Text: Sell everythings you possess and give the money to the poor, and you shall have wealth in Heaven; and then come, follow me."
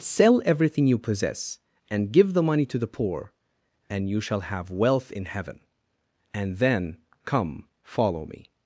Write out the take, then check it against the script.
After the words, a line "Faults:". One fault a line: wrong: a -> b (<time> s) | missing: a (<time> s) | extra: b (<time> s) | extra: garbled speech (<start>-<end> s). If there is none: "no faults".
Sell everything you possess and give the money to the poor, and you shall have wealth in Heaven; and then come, follow me."
Faults:
wrong: everythings -> everything (0.5 s)